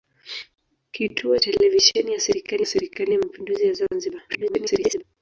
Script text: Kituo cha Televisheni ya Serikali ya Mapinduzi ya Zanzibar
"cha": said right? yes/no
no